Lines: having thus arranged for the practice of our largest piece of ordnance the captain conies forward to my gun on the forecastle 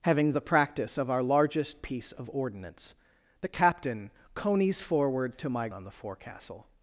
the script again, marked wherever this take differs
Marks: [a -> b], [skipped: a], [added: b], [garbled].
having [skipped: thus arranged for] the practice of our largest piece of ordnance the captain conies forward to my [skipped: gun] on the forecastle